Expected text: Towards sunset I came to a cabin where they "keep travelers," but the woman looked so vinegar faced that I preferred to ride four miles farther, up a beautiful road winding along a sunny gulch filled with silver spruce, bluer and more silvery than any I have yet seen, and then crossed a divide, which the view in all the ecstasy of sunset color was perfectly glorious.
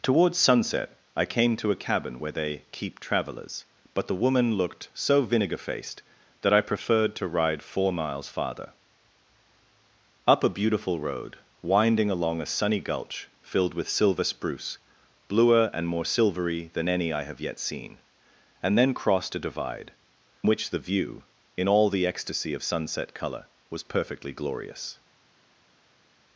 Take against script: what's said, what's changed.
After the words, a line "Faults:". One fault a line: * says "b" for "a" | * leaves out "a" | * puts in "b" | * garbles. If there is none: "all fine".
Towards sunset I came to a cabin where they "keep travelers," but the woman looked so vinegar faced that I preferred to ride four miles farther, up a beautiful road winding along a sunny gulch filled with silver spruce, bluer and more silvery than any I have yet seen, and then crossed a divide, which the view in all the ecstasy of sunset color was perfectly glorious.
Faults:
all fine